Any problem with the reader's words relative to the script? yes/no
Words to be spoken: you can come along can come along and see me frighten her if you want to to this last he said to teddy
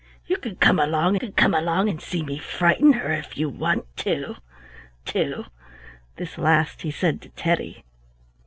no